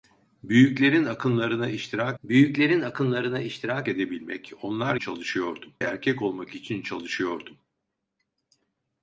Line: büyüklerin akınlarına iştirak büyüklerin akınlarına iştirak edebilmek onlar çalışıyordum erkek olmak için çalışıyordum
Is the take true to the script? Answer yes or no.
yes